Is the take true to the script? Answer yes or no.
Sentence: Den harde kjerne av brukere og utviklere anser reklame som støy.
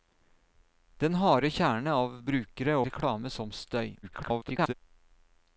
no